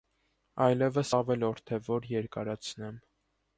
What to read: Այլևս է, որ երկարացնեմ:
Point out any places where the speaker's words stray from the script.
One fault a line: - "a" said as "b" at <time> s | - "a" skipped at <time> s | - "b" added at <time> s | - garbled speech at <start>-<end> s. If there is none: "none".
- "ավելորդ" added at 1.2 s